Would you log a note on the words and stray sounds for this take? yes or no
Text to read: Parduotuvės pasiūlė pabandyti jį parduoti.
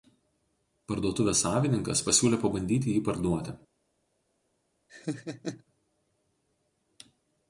yes